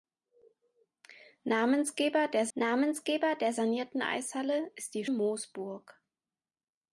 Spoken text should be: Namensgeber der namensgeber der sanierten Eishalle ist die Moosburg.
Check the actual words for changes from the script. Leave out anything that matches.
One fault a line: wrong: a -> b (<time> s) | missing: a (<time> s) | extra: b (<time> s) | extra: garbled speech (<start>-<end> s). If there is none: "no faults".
no faults